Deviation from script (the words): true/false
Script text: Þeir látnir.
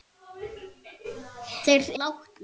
false